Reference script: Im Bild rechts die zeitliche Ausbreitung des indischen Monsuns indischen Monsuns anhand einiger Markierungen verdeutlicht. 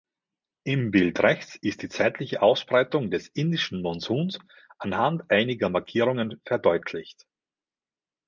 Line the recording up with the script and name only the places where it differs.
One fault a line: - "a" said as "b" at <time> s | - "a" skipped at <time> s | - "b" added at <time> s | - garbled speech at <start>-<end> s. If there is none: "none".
- "ist" added at 1.6 s
- "indischen Monsuns" skipped at 4.4 s